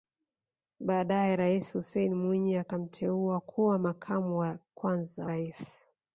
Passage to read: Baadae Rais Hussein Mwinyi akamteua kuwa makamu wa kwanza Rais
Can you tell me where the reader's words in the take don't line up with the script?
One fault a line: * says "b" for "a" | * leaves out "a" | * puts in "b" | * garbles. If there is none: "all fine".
all fine